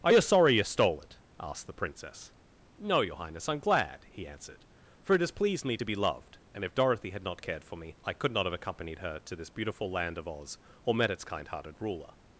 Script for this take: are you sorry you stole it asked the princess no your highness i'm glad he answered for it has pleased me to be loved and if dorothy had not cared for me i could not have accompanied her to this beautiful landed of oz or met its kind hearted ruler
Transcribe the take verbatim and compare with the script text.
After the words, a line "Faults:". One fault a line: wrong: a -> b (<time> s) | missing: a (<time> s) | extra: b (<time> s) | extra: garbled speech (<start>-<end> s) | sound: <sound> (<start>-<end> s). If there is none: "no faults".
are you sorry you stole it asked the princess no your highness i'm glad he answered for it has pleased me to be loved and if dorothy had not cared for me i could not have accompanied her to this beautiful land of oz or met its kind hearted ruler
Faults:
wrong: landed -> land (9.9 s)